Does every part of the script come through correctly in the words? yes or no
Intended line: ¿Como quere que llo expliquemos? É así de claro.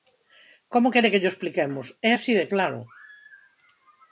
yes